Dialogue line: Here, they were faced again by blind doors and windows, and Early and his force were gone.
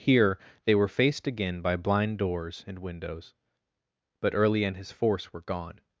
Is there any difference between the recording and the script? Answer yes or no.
yes